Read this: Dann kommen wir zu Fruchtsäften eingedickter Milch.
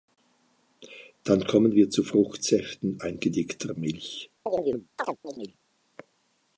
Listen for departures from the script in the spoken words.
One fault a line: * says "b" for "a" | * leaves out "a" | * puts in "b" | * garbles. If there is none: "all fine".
all fine